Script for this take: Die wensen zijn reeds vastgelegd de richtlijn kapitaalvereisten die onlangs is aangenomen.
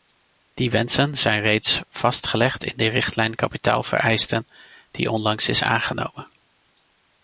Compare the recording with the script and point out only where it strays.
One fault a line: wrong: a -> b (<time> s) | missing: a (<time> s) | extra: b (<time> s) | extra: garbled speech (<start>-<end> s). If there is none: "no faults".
extra: in (2.6 s)